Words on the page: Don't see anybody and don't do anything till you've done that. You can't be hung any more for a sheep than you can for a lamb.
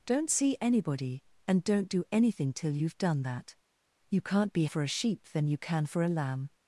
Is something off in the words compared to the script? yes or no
yes